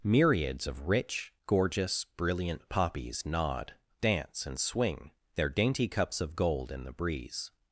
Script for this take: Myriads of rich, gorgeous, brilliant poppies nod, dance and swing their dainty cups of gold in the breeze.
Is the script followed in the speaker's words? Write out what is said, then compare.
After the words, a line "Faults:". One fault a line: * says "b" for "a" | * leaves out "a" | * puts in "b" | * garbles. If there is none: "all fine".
Myriads of rich, gorgeous, brilliant poppies nod, dance and swing their dainty cups of gold in the breeze.
Faults:
all fine